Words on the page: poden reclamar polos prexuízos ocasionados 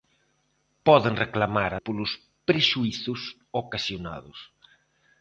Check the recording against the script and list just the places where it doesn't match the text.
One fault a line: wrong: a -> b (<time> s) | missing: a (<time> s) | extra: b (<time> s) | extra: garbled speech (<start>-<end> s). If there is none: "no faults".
no faults